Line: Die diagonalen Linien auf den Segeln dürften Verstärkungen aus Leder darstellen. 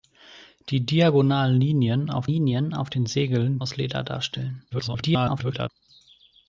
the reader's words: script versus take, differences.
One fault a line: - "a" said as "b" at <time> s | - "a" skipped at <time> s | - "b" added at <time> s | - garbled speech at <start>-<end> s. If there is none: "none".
- "Linien auf" added at 2.3 s
- "dürften Verstärkungen" skipped at 3.6 s
- garbled speech at 4.7-5.7 s